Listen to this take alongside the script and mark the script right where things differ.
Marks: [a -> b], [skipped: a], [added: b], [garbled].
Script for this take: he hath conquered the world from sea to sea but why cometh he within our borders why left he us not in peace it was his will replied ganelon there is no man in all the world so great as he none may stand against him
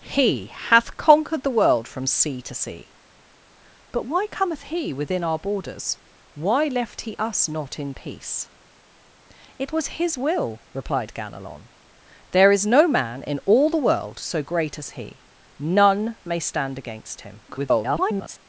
he hath conquered the world from sea to sea but why cometh he within our borders why left he us not in peace it was his will replied ganelon there is no man in all the world so great as he none may stand against him [garbled]